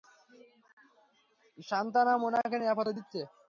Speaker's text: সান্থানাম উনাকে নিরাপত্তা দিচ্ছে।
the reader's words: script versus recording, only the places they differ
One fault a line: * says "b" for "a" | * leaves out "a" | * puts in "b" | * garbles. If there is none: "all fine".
all fine